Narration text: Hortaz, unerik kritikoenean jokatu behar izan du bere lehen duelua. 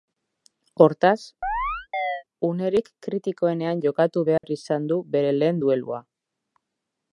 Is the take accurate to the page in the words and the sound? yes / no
no